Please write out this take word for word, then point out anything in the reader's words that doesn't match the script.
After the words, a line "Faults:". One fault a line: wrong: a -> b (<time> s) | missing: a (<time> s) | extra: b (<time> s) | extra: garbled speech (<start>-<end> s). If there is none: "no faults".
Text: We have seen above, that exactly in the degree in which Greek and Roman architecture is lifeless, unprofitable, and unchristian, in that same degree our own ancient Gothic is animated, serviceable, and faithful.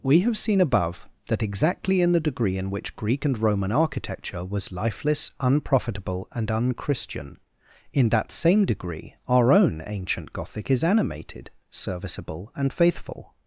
We have seen above, that exactly in the degree in which Greek and Roman architecture was lifeless, unprofitable, and unchristian, in that same degree our own ancient Gothic is animated, serviceable, and faithful.
Faults:
wrong: is -> was (4.5 s)